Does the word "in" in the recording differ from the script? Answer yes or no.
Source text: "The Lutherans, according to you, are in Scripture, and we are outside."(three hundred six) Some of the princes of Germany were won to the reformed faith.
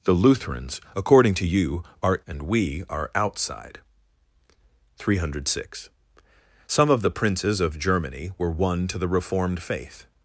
yes